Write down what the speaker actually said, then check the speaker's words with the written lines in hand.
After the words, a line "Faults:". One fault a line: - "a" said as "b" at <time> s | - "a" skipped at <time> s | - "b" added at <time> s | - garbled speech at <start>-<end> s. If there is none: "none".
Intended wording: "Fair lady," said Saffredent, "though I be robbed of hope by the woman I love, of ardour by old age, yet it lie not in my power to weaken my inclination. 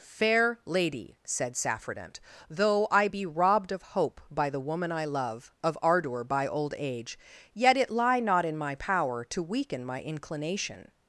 "Fair lady," said Saffredent, "though I be robbed of hope by the woman I love, of ardour by old age, yet it lie not in my power to weaken my inclination.
Faults:
none